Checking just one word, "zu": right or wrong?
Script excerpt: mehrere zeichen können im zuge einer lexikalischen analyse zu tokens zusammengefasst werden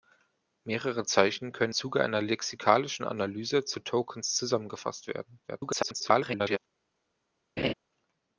right